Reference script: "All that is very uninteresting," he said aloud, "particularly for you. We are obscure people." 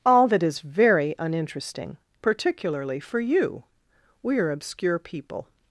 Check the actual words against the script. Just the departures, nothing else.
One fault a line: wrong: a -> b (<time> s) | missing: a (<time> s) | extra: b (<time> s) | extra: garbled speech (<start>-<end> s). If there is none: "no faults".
missing: he said aloud (2.0 s)